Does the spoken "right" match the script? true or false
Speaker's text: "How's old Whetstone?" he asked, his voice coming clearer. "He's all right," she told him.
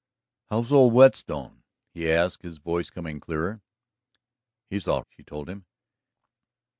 false